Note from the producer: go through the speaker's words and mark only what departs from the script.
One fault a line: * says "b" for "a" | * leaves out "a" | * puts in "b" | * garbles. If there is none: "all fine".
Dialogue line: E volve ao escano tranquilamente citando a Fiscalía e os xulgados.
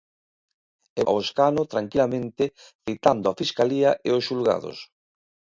* leaves out "volve"